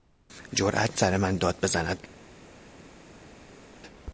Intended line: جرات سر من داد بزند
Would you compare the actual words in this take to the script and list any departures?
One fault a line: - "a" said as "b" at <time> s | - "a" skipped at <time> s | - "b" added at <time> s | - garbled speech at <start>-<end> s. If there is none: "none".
none